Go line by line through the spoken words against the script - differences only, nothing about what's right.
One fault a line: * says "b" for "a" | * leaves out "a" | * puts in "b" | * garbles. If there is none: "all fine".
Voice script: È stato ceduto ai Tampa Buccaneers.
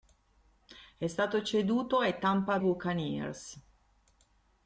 all fine